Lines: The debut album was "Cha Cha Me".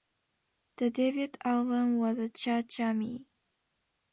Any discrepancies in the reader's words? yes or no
no